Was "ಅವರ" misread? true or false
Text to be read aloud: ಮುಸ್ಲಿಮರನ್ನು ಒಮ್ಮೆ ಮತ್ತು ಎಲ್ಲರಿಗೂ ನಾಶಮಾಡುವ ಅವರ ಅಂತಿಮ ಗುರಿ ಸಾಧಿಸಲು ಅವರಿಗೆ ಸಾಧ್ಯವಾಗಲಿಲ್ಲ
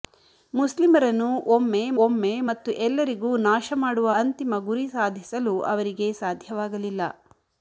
true